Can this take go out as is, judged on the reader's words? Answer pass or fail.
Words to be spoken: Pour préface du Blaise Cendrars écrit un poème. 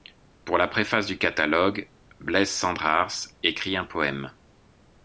fail